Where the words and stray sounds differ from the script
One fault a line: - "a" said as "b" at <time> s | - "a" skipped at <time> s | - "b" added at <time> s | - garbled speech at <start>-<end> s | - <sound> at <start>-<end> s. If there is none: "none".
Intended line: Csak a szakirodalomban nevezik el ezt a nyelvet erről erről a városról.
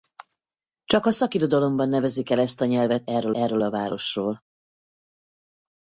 none